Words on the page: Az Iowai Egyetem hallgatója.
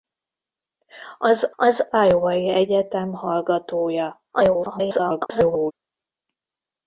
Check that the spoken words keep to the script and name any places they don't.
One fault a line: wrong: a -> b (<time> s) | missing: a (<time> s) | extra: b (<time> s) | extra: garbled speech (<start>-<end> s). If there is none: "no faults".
extra: az (1.6 s)
extra: garbled speech (4.3-5.7 s)